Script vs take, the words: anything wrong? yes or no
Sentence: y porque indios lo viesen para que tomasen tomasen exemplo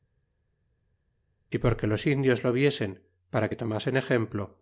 yes